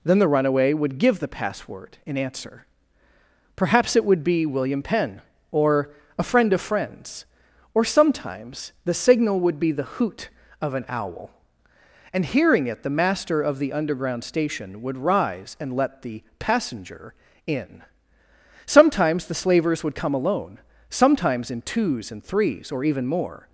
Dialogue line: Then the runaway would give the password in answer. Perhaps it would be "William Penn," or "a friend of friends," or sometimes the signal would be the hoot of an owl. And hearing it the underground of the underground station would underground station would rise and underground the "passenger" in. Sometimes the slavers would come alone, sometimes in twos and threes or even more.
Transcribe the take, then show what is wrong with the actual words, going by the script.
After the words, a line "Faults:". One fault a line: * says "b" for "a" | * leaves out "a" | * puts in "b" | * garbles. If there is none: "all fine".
Then the runaway would give the password in answer. Perhaps it would be "William Penn," or "a friend of friends," or sometimes the signal would be the hoot of an owl. And hearing it the master of the underground station would rise and let the "passenger" in. Sometimes the slavers would come alone, sometimes in twos and threes or even more.
Faults:
* says "master" for "underground"
* leaves out "underground station would"
* says "let" for "underground"